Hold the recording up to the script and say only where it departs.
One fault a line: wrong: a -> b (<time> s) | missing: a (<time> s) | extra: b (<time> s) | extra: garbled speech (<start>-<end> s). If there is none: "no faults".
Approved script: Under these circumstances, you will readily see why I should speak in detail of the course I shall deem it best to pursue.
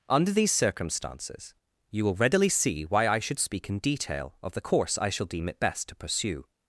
no faults